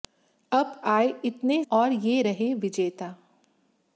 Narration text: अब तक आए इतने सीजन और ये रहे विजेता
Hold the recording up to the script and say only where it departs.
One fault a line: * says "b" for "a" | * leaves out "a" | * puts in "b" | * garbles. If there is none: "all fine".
* leaves out "तक"
* leaves out "सीजन"